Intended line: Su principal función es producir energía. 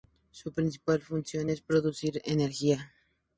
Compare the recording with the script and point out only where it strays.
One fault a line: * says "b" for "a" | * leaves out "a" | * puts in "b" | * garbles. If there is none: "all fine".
all fine